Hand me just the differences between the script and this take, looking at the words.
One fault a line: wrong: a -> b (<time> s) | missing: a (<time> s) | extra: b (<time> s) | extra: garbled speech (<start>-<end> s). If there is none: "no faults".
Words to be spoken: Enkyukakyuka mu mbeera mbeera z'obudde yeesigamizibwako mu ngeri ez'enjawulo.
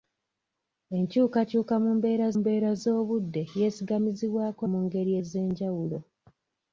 no faults